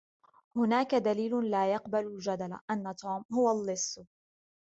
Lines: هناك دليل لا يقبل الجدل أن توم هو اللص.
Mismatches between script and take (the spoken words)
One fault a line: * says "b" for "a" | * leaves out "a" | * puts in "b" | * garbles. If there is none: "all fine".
all fine